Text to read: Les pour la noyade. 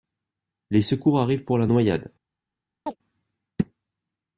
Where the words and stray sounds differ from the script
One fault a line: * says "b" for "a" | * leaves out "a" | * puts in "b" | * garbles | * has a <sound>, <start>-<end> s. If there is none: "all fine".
* puts in "secours arrivent"
* has a chirp, 2.9-3.0 s